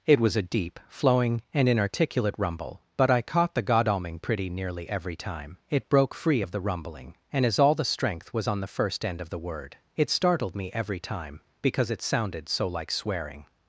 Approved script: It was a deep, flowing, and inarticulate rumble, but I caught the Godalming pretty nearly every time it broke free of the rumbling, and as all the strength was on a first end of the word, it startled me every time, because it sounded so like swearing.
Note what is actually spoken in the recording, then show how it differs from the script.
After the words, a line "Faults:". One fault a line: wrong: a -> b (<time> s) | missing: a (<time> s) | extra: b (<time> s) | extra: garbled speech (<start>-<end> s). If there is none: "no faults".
It was a deep, flowing, and inarticulate rumble, but I caught the Godalming pretty nearly every time it broke free of the rumbling, and as all the strength was on the first end of the word, it startled me every time, because it sounded so like swearing.
Faults:
wrong: a -> the (8.6 s)